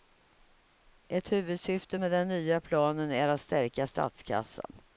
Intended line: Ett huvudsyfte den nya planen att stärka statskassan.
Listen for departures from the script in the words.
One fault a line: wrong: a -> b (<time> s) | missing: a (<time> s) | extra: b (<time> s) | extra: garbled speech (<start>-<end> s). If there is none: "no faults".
extra: med (2.0 s)
extra: är (3.1 s)